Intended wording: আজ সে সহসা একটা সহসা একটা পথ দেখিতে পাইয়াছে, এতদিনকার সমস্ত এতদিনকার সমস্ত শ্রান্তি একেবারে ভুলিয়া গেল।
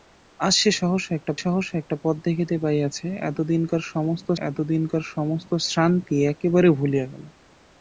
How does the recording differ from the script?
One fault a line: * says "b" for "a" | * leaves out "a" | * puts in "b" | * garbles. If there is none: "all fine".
all fine